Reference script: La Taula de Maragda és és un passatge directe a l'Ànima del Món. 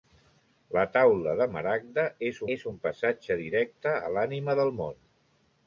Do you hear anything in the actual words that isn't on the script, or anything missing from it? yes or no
no